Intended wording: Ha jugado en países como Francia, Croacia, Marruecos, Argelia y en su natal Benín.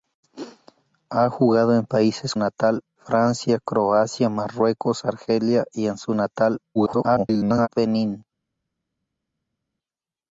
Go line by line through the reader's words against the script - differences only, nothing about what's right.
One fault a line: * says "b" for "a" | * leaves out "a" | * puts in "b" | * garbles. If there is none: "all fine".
* says "natal" for "como"
* garbles